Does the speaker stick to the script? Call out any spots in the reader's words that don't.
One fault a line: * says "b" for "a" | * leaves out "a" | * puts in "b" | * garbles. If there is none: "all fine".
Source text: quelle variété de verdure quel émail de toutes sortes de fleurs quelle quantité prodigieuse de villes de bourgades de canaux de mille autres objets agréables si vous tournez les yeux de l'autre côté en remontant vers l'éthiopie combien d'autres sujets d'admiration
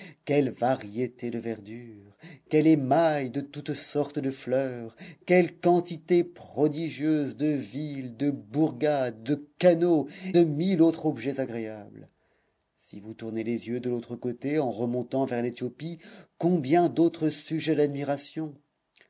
all fine